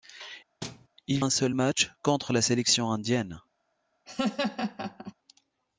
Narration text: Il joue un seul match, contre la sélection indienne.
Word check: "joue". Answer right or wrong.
wrong